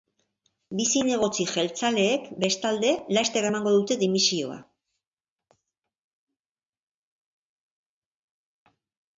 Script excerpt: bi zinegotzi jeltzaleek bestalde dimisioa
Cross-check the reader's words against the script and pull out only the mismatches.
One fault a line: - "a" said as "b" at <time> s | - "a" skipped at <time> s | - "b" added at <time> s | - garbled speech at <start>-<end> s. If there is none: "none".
- "laster emango dute" added at 3.2 s